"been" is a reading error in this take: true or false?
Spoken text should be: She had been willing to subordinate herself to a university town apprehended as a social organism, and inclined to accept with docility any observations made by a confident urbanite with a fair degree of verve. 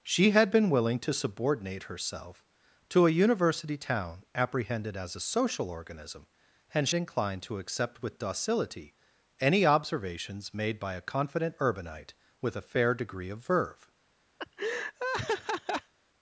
false